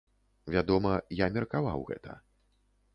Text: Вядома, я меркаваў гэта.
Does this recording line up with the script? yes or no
yes